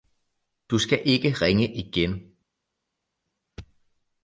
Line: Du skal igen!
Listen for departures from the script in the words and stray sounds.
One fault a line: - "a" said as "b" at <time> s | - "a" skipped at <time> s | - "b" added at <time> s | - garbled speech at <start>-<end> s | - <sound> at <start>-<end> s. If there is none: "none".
- "ikke ringe" added at 1.1 s